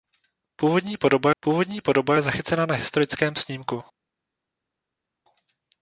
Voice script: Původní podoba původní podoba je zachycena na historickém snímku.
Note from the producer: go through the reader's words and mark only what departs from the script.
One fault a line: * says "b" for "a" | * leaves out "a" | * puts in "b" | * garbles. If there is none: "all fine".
all fine